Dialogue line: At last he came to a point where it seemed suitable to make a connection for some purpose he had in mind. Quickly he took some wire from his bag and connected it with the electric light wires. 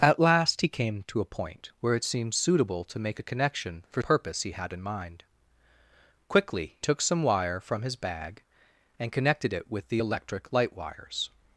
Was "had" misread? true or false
false